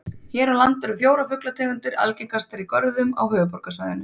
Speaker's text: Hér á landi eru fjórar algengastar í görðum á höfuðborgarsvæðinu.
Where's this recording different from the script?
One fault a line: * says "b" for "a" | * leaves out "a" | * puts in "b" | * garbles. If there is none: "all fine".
* puts in "fuglategundir"